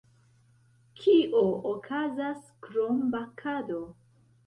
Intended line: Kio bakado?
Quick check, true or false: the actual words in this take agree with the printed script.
false